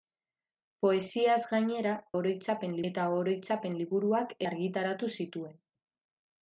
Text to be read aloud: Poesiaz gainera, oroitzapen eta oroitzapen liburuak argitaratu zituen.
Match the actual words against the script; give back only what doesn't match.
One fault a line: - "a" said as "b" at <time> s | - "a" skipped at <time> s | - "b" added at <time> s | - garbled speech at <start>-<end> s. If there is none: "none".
none